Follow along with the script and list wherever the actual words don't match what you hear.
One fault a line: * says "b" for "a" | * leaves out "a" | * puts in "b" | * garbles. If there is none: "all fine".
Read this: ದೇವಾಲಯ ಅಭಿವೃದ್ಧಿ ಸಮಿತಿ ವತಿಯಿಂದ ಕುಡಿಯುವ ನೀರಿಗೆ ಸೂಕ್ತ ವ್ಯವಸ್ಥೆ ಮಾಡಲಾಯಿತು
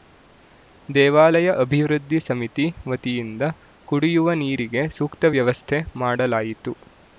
all fine